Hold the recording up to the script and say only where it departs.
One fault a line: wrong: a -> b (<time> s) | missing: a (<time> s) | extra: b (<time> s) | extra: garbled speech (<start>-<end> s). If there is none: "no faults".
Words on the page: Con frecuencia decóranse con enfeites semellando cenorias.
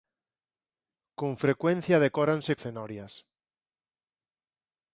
missing: con enfeites semellando (2.5 s)